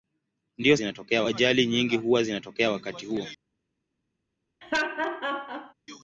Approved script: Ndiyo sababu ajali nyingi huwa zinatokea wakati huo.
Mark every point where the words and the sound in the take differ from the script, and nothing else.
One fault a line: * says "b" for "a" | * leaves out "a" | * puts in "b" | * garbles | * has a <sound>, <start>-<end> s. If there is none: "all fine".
* says "zinatokea" for "sababu"
* has a laugh, 4.6-5.7 s